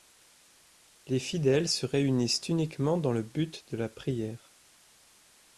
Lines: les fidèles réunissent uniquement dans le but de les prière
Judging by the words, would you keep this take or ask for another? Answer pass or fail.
fail